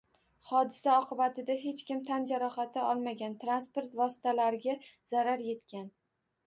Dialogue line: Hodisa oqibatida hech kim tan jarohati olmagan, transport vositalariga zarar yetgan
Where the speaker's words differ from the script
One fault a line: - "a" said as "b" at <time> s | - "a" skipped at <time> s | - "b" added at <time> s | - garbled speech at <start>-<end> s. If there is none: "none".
none